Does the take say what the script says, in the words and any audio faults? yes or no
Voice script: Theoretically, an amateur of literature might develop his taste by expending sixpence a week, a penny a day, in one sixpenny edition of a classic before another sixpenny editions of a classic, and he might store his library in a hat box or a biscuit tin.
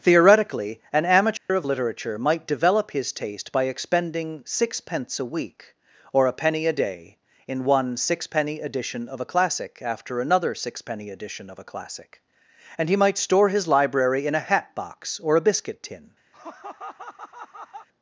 no